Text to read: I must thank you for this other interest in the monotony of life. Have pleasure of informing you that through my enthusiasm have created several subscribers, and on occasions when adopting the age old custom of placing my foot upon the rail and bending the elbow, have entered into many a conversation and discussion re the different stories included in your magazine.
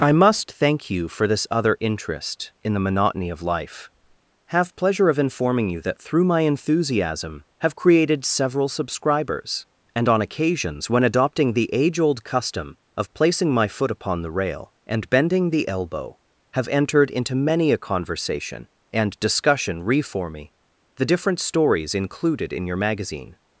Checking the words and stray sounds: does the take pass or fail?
fail